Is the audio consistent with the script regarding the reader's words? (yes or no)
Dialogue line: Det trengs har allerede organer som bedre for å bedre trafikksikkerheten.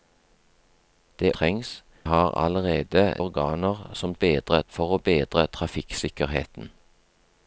yes